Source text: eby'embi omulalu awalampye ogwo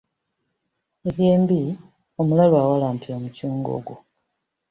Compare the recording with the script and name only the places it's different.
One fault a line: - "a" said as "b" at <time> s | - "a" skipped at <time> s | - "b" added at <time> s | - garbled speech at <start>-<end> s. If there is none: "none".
- "omucungwa" added at 3.2 s